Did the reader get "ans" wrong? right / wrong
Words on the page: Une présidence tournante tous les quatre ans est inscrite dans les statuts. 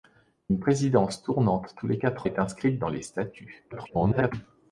wrong